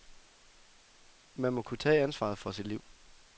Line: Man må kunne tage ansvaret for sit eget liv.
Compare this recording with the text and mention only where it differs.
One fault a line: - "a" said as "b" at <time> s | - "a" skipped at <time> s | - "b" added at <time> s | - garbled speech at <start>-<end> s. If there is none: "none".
- "eget" skipped at 2.7 s